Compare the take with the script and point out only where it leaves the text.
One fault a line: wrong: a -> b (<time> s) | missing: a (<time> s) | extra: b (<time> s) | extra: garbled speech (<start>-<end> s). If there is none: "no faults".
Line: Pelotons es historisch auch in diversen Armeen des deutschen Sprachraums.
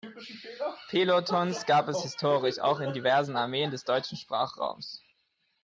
extra: gab (1.7 s)